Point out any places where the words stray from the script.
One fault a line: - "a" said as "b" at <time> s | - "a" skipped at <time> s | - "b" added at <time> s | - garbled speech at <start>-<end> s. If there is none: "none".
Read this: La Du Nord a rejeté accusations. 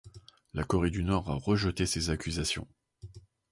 - "Corée" added at 0.6 s
- "ces" added at 1.9 s